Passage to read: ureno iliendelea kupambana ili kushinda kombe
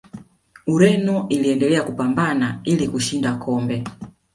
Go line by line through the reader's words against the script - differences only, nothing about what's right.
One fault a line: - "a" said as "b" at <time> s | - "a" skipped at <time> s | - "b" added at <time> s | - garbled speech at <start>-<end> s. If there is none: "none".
none